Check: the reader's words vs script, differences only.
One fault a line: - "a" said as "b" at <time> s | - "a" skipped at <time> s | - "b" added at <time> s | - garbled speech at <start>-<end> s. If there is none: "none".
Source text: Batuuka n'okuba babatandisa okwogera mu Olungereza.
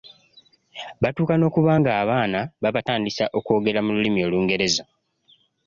- "ng'abaana" added at 1.8 s
- "Lulimi" added at 4.0 s